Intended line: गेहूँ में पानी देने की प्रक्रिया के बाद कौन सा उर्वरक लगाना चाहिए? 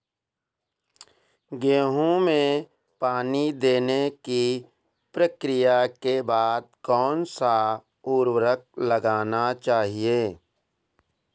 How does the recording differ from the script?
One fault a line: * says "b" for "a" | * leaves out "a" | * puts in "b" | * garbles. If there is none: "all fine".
all fine